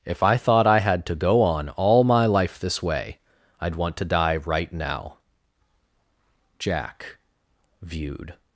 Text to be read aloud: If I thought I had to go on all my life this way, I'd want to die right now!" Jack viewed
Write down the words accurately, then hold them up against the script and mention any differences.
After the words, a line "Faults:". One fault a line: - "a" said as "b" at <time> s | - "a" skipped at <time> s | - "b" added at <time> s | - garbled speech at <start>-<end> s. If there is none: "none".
If I thought I had to go on all my life this way, I'd want to die right now!" Jack viewed
Faults:
none